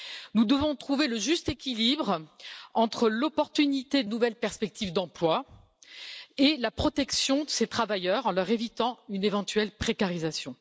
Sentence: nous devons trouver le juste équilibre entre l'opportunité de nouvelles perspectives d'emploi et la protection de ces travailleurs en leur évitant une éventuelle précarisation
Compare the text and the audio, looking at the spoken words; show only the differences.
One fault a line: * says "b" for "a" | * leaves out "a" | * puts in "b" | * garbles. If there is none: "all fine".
all fine